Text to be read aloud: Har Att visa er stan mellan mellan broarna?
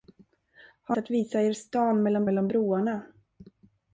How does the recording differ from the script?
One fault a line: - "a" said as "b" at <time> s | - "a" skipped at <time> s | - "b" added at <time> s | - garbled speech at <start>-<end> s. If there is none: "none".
none